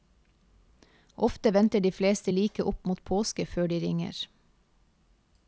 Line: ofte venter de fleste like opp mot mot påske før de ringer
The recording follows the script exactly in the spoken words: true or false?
false